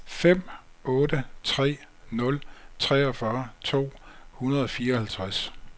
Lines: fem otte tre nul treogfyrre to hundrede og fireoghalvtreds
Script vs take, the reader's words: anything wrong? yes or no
no